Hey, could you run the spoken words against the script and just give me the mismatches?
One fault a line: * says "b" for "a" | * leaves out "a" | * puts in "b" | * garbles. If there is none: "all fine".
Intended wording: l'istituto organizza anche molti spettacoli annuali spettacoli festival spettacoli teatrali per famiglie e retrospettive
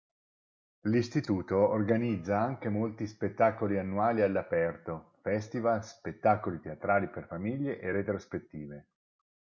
* says "all'aperto" for "spettacoli"